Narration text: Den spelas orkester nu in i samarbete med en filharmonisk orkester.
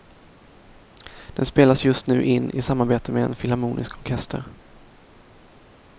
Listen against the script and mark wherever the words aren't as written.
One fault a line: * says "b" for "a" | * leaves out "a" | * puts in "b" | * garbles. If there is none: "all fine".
* says "just" for "orkester"